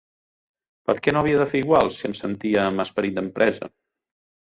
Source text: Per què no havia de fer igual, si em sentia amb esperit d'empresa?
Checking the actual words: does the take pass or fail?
pass